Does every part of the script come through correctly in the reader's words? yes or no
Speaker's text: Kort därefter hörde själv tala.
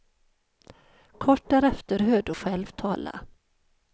yes